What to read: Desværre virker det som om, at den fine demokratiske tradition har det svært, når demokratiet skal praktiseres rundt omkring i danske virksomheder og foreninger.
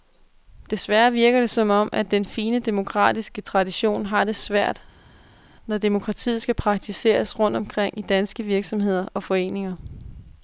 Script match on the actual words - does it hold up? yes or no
yes